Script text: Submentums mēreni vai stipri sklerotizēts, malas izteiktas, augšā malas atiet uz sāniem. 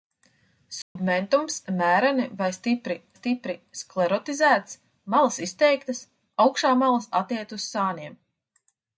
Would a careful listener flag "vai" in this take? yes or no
no